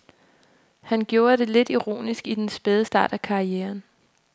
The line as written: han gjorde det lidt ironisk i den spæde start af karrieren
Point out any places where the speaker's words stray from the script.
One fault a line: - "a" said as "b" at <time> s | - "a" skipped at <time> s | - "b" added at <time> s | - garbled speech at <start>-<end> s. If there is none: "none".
none